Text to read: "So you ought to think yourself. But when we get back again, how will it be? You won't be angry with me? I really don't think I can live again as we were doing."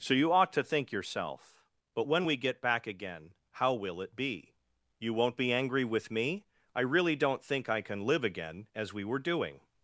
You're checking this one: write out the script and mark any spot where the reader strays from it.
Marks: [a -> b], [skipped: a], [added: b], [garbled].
"So you ought to think yourself. But when we get back again, how will it be? You won't be angry with me? I really don't think I can live again as we were doing."